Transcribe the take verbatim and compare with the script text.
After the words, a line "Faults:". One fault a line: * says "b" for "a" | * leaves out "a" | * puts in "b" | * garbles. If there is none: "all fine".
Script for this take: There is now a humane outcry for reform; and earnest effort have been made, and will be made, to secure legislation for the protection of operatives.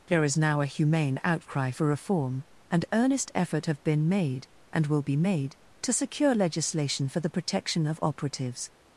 There is now a humane outcry for reform; and earnest effort have been made, and will be made, to secure legislation for the protection of operatives.
Faults:
all fine